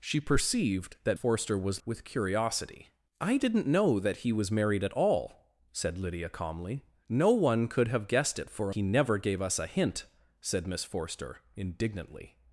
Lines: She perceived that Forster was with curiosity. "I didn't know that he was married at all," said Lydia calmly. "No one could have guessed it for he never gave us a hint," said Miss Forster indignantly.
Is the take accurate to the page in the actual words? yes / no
yes